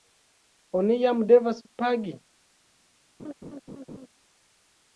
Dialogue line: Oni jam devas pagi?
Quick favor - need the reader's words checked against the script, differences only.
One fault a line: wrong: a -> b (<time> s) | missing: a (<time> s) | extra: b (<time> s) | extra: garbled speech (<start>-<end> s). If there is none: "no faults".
no faults